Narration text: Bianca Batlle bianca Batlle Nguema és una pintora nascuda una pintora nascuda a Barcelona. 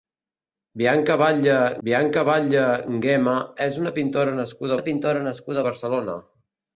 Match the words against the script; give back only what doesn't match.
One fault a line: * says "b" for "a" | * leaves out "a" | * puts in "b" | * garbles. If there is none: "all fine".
all fine